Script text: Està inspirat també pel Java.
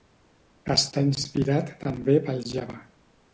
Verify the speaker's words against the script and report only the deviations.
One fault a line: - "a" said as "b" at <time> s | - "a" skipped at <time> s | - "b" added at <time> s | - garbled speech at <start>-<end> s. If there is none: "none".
none